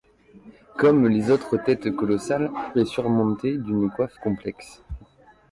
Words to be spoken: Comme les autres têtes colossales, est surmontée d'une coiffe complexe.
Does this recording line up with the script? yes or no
yes